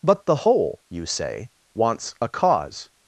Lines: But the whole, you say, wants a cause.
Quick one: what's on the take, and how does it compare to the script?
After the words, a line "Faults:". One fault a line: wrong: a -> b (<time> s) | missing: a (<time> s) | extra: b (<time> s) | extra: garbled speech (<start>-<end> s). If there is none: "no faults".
But the whole, you say, wants a cause.
Faults:
no faults